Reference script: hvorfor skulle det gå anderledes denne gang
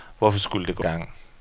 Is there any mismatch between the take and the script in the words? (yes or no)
yes